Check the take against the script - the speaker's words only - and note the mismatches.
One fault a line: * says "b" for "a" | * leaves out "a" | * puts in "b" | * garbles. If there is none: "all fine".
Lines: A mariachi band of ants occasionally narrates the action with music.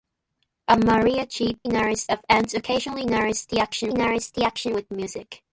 * says "narrates" for "band"
* puts in "narrates the action"